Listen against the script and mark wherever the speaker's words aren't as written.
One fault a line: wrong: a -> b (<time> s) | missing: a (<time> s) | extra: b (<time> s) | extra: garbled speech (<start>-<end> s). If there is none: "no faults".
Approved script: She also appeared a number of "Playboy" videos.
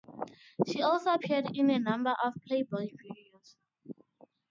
extra: in (1.5 s)